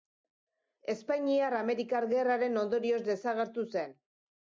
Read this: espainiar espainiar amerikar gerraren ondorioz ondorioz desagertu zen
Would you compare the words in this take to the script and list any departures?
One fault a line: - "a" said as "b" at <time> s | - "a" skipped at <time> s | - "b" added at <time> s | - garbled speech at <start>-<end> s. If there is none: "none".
- "espainiar" skipped at 1.6 s
- "ondorioz" skipped at 3.0 s